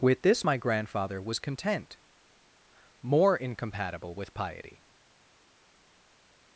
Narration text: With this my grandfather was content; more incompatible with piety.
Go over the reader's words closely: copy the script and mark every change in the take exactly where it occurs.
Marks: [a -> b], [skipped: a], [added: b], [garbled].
With this my grandfather was content; more incompatible with piety.